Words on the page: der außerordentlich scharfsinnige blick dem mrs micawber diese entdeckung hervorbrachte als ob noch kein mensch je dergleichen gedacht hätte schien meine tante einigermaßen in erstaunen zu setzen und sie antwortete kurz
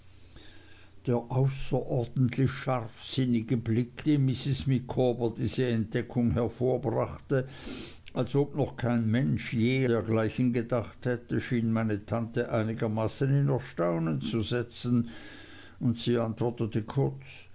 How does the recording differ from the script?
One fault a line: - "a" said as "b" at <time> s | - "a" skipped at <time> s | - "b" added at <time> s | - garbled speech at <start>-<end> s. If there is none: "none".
none